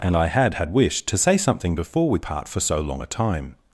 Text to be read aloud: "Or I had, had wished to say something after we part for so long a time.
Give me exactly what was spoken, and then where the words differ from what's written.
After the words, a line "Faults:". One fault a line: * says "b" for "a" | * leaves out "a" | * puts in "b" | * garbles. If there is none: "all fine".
"And I had, had wished to say something before we part for so long a time.
Faults:
* says "And" for "Or"
* says "before" for "after"